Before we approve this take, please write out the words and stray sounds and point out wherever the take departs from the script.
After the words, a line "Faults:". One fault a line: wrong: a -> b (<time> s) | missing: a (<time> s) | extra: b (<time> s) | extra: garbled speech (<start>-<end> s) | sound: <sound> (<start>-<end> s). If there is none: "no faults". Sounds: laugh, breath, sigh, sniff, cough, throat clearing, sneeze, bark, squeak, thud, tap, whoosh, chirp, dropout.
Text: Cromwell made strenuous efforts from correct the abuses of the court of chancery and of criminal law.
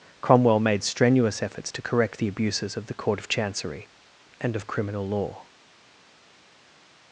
Cromwell made strenuous efforts to correct the abuses of the court of chancery and of criminal law.
Faults:
wrong: from -> to (1.7 s)